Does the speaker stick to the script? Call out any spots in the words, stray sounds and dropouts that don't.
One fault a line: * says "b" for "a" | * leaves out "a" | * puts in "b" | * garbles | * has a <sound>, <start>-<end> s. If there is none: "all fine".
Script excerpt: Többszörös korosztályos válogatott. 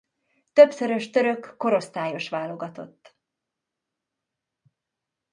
* puts in "török"